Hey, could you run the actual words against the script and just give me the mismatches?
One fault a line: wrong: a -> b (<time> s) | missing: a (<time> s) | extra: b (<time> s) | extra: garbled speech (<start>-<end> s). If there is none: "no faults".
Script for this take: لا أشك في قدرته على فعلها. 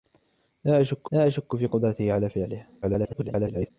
extra: لا أشك (1.1 s)
extra: garbled speech (2.8-3.7 s)